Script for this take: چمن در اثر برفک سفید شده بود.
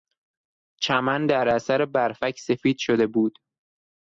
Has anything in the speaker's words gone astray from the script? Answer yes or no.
no